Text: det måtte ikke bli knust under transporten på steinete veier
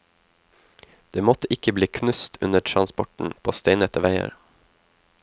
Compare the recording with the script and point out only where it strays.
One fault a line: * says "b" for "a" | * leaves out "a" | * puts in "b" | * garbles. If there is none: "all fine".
all fine